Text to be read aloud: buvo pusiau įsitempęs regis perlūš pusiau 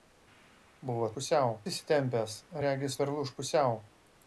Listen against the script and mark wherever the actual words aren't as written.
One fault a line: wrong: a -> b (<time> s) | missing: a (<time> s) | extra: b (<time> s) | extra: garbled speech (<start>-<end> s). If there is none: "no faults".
no faults